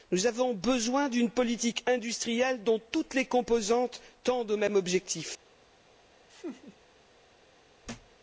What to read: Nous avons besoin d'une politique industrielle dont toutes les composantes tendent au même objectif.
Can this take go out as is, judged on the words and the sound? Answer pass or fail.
fail